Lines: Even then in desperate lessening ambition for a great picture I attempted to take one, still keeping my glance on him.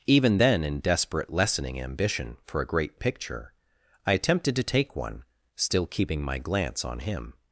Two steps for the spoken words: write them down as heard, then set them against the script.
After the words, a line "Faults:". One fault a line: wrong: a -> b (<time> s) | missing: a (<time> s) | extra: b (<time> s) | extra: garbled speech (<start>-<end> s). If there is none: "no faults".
Even then in desperate lessening ambition for a great picture I attempted to take one, still keeping my glance on him.
Faults:
no faults